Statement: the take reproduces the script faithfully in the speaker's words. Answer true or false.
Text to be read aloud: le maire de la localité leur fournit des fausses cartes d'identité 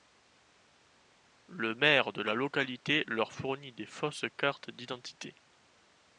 true